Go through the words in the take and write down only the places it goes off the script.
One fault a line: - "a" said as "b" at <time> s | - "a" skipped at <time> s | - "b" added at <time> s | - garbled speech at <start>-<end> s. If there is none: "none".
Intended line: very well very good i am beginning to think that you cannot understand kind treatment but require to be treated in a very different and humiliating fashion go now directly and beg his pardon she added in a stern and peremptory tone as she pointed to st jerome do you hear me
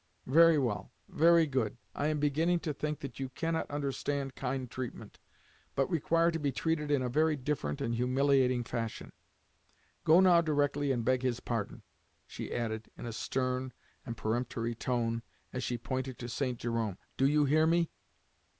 none